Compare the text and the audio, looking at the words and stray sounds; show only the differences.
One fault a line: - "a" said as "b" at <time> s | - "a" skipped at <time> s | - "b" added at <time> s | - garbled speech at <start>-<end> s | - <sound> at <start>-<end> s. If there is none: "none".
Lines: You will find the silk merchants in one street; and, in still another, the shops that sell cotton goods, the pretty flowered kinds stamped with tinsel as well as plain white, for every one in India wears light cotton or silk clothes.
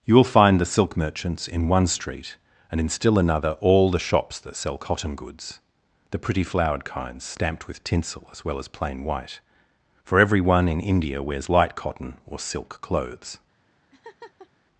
- "all" added at 3.6 s
- laugh at 13.9-14.5 s